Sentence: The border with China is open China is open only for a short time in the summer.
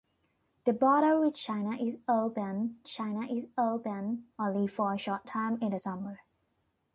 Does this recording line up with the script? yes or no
yes